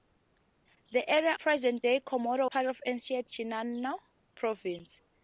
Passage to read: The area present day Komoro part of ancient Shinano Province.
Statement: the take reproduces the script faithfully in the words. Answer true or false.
true